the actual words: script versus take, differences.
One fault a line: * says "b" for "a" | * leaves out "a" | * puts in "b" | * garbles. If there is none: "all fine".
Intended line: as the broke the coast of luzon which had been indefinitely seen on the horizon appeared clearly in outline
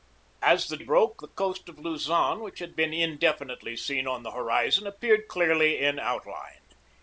all fine